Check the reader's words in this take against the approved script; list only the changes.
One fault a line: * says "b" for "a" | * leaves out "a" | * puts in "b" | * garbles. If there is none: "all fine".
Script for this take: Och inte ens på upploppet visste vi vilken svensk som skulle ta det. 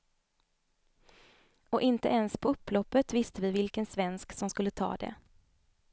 all fine